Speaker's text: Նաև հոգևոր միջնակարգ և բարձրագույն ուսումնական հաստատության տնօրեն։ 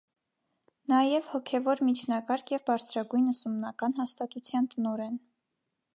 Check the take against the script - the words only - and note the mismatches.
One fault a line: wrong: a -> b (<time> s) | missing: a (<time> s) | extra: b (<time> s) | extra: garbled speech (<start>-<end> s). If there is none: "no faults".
no faults